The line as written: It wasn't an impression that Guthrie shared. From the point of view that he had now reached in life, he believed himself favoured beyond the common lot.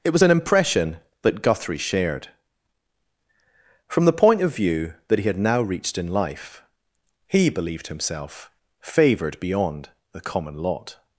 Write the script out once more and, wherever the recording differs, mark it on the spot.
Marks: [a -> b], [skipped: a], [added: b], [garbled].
It [wasn't -> was] an impression that Guthrie shared. From the point of view that he had now reached in life, he believed himself favoured beyond the common lot.